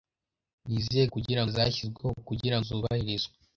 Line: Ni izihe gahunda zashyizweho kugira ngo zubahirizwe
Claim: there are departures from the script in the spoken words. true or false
true